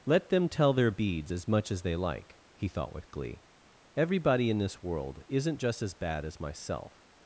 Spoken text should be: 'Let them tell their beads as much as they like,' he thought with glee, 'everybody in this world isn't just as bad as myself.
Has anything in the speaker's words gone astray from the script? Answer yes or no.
no